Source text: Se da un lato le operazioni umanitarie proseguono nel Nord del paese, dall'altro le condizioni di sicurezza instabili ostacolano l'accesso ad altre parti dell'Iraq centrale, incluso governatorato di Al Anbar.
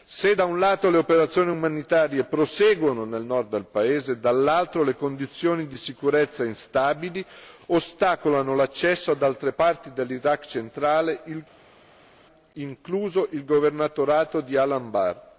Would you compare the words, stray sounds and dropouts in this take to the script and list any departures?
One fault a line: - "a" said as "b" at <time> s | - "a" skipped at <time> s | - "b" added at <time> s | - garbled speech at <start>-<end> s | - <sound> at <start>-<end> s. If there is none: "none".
- "il" added at 13.3 s